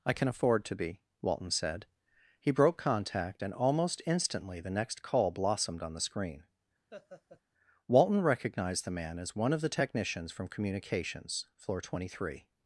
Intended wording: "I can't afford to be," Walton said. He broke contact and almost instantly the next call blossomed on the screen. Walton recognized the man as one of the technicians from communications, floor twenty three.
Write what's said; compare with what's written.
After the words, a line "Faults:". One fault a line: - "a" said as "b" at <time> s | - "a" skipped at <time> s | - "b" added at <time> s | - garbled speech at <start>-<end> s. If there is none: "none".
"I can afford to be," Walton said. He broke contact and almost instantly the next call blossomed on the screen. Walton recognized the man as one of the technicians from communications, floor twenty three.
Faults:
- "can't" said as "can" at 0.1 s